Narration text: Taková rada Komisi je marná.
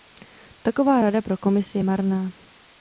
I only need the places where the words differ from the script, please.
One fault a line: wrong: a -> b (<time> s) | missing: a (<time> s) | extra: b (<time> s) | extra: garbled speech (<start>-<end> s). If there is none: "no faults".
extra: pro (1.2 s)